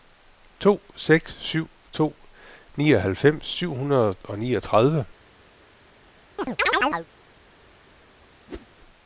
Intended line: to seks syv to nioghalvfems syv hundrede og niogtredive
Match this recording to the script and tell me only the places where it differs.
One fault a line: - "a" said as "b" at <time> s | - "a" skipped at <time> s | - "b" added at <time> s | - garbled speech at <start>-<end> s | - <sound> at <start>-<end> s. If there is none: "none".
- chirp at 6.4-7.1 s
- whoosh at 8.5-8.7 s